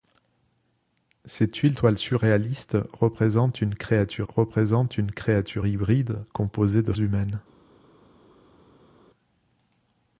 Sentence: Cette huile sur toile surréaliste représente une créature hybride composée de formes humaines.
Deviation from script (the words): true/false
true